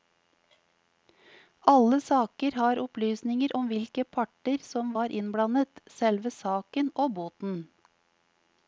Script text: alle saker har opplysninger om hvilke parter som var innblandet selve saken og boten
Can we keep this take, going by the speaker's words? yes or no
yes